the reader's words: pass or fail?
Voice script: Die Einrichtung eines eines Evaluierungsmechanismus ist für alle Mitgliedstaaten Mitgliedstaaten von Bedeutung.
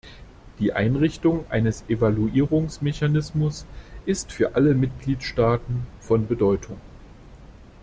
fail